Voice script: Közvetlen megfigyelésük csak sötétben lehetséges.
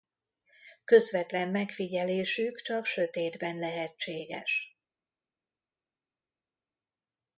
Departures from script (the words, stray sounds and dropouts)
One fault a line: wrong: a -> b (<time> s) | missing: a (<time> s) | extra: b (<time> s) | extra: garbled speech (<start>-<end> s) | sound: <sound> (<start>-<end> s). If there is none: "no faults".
no faults